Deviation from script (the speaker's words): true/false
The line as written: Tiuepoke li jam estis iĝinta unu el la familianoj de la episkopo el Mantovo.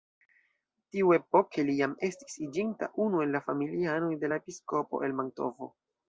false